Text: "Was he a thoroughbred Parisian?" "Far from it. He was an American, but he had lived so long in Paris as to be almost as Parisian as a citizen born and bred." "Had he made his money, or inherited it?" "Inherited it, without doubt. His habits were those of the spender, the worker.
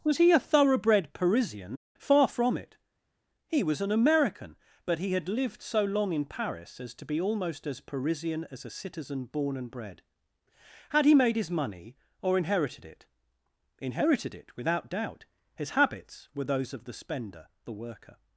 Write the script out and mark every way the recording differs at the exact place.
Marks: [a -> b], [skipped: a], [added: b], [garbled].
"Was he a thoroughbred Parisian?" "Far from it. He was an American, but he had lived so long in Paris as to be almost as Parisian as a citizen born and bred." "Had he made his money, or inherited it?" "Inherited it, without doubt. His habits were those of the spender, the worker.